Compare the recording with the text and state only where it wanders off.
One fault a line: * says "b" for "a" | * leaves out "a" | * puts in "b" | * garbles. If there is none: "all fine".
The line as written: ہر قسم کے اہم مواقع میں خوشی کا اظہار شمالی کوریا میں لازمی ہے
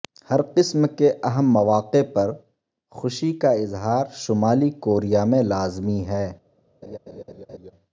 * says "پر" for "میں"